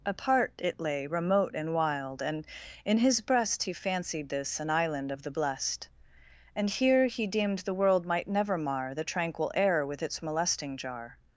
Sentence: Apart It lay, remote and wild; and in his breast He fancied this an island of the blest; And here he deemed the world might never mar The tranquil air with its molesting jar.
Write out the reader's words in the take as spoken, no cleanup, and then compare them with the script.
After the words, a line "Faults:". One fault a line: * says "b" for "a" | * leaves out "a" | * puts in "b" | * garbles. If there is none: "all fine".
Apart It lay, remote and wild; and in his breast He fancied this an island of the blest; And here he deemed the world might never mar The tranquil air with its molesting jar.
Faults:
all fine